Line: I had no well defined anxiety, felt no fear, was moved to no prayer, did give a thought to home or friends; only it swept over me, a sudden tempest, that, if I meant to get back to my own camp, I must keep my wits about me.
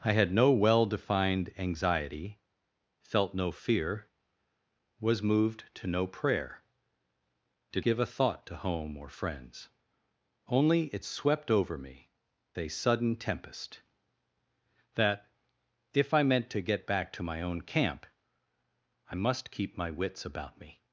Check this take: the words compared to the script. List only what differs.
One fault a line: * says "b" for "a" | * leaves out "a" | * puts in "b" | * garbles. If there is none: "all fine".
all fine